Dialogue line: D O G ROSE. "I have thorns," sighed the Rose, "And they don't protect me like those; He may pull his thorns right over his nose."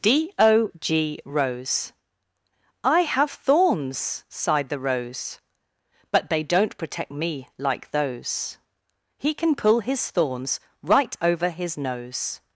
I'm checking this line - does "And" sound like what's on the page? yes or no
no